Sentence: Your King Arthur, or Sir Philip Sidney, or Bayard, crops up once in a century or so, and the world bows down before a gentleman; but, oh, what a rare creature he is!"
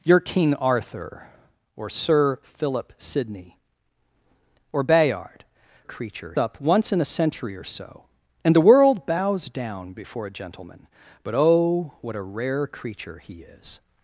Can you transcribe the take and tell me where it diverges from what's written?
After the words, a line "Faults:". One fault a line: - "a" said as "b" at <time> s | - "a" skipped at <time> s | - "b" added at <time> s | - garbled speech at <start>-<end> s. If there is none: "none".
Your King Arthur, or Sir Philip Sidney, or Bayard, creature up once in a century or so, and the world bows down before a gentleman; but, oh, what a rare creature he is!"
Faults:
- "crops" said as "creature" at 5.8 s